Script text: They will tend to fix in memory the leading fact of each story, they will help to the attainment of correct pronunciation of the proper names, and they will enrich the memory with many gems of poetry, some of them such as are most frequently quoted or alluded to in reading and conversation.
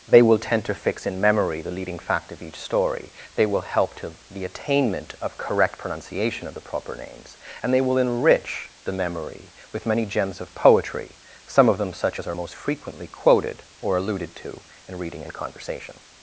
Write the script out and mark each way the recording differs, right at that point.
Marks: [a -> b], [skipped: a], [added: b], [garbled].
They will tend to fix in memory the leading fact of each story, they will help to the attainment of correct pronunciation of the proper names, and they will enrich the memory with many gems of poetry, some of them such as are most frequently quoted or alluded to in reading and conversation.